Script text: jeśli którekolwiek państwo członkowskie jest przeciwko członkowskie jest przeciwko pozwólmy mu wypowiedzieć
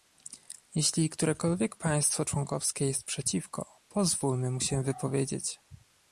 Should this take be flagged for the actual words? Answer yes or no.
yes